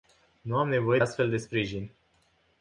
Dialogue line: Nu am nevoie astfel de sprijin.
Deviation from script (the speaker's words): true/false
false